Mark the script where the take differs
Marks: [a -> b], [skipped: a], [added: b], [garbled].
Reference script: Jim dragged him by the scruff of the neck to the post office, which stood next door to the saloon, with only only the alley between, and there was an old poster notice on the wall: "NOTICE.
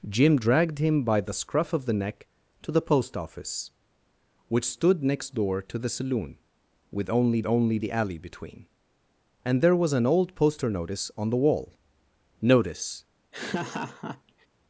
Jim dragged him by the scruff of the neck to the post office, which stood next door to the saloon, with only only the alley between, and there was an old poster notice on the wall: "NOTICE.